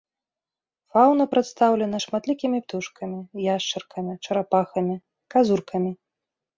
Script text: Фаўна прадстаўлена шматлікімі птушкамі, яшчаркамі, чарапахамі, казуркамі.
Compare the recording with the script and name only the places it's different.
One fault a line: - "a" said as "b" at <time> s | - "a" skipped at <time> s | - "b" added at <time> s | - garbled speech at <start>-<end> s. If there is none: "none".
none